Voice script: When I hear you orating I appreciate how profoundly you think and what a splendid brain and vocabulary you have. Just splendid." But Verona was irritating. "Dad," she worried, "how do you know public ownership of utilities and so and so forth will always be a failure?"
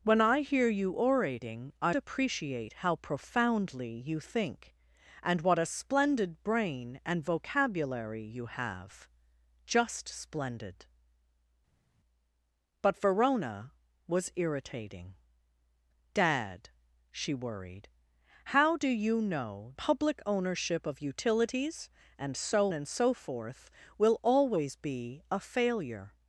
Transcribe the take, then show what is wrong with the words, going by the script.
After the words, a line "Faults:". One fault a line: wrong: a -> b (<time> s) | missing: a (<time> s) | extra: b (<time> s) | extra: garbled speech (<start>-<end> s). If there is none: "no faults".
When I hear you orating I appreciate how profoundly you think and what a splendid brain and vocabulary you have. Just splendid." But Verona was irritating. "Dad," she worried, "how do you know public ownership of utilities and so and so forth will always be a failure?"
Faults:
no faults